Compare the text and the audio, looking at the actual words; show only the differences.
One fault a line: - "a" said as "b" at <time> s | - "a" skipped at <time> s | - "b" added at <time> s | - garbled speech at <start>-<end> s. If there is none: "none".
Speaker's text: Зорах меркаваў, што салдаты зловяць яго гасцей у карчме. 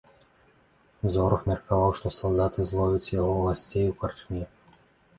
none